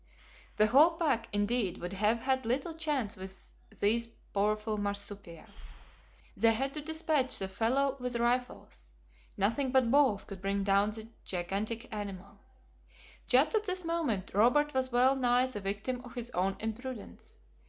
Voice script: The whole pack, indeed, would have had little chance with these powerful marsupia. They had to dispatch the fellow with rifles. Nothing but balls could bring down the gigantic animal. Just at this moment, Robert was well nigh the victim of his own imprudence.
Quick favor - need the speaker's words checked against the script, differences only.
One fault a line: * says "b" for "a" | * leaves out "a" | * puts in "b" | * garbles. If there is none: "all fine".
all fine